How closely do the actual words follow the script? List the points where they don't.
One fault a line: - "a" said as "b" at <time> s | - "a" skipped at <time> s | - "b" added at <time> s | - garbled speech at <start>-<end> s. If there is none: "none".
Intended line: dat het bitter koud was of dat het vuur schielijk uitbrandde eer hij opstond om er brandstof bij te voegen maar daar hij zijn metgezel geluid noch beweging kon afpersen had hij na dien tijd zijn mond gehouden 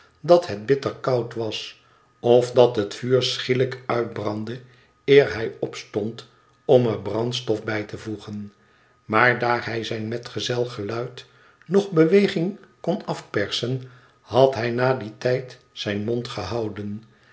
none